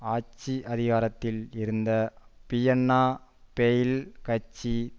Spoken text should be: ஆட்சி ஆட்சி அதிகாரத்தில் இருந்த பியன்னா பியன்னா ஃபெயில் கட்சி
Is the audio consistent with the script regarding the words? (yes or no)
no